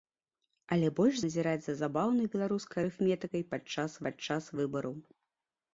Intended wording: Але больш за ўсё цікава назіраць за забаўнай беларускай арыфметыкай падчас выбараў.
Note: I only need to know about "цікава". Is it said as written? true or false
false